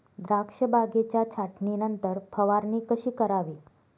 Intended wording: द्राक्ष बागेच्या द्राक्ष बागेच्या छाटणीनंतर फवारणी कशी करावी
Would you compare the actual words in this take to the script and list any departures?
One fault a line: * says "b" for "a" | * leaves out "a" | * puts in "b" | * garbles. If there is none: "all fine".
* leaves out "द्राक्ष बागेच्या"